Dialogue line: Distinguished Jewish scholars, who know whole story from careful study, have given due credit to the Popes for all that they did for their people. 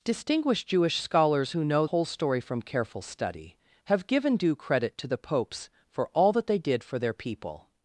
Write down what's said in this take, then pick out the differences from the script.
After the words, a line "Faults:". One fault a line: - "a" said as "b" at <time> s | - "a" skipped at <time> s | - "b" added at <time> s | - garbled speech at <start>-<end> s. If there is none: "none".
Distinguished Jewish scholars, who know whole story from careful study, have given due credit to the Popes for all that they did for their people.
Faults:
none